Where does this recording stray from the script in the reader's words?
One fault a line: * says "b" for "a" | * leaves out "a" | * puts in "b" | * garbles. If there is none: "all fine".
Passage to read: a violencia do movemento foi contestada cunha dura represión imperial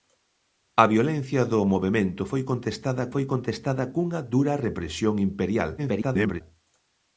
* puts in "foi contestada"
* garbles